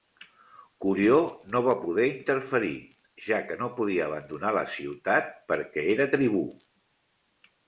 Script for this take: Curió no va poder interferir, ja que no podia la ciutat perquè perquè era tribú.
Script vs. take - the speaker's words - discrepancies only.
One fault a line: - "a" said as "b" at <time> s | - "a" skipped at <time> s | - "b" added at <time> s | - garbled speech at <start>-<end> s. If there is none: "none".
- "abandonar" added at 4.1 s
- "perquè" skipped at 5.9 s